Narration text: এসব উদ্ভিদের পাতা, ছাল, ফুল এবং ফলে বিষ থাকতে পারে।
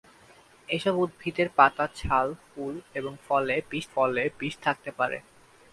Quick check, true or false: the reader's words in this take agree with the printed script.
false